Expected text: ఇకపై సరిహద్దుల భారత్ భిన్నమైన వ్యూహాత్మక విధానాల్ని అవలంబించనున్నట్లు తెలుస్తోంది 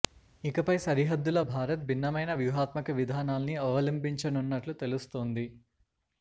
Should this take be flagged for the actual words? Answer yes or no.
no